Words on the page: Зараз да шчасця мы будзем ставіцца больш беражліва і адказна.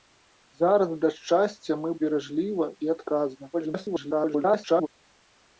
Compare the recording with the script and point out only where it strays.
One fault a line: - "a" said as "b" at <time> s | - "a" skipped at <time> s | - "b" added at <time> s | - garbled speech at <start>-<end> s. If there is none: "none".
- "будзем ставіцца больш" skipped at 1.9 s
- garbled speech at 3.5-4.9 s